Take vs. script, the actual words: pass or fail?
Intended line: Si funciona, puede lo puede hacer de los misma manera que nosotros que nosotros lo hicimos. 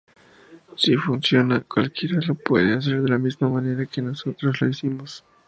fail